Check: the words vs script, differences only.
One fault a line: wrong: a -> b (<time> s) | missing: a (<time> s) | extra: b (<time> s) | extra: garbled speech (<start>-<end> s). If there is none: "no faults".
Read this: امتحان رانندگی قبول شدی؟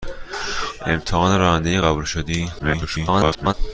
extra: garbled speech (2.6-3.5 s)